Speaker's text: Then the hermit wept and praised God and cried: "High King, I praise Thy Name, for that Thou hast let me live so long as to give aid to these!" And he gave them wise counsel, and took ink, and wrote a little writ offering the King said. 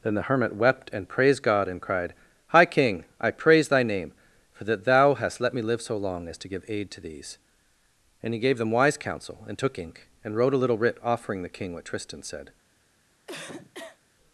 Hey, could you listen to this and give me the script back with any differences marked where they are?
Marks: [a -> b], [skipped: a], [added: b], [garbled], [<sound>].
Then the hermit wept and praised God and cried: "High King, I praise Thy Name, for that Thou hast let me live so long as to give aid to these!" And he gave them wise counsel, and took ink, and wrote a little writ offering the King [added: what Tristan] said. [cough]